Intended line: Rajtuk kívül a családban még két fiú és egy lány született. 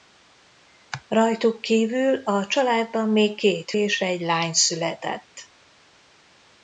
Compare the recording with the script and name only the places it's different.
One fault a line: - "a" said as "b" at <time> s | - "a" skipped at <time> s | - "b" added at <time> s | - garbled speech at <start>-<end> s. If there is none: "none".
- "fiú" skipped at 3.7 s